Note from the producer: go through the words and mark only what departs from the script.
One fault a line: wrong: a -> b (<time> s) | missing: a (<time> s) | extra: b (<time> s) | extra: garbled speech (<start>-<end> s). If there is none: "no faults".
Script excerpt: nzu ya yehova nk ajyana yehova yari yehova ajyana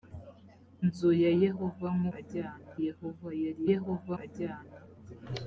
no faults